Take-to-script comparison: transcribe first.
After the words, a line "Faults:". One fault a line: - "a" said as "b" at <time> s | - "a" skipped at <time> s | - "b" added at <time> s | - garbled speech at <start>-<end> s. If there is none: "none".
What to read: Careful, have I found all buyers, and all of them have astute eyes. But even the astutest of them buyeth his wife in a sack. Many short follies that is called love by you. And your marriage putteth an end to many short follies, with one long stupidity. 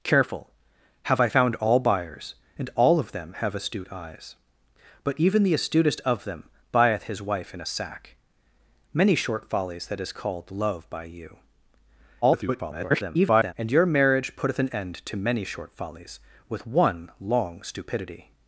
Careful, have I found all buyers, and all of them have astute eyes. But even the astutest of them buyeth his wife in a sack. Many short follies that is called love by you. [garbled] And your marriage putteth an end to many short follies, with one long stupidity.
Faults:
- garbled speech at 12.2-13.5 s